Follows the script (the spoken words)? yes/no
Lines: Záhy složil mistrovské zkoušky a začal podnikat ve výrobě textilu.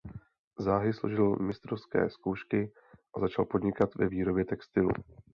yes